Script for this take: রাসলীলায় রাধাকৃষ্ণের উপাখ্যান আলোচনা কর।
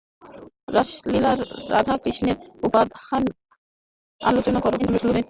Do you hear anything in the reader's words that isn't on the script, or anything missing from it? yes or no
yes